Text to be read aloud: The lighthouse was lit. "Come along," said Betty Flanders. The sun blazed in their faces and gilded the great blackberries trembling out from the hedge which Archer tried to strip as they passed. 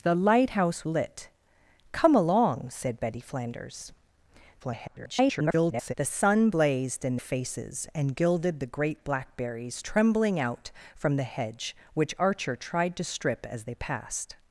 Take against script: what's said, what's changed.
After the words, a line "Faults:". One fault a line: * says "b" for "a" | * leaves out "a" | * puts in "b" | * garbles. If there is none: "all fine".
The lighthouse lit. "Come along," said Betty Flanders. [garbled] The sun blazed in faces and gilded the great blackberries trembling out from the hedge which Archer tried to strip as they passed.
Faults:
* leaves out "was"
* garbles
* leaves out "their"